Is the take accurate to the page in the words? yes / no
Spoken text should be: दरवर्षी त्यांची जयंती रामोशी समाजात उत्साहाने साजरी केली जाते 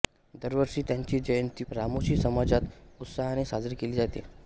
yes